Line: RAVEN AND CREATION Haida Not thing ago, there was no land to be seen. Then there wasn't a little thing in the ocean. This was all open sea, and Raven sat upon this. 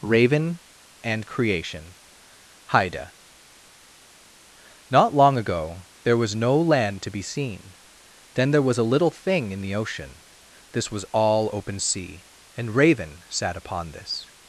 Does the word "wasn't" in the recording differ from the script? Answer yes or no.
yes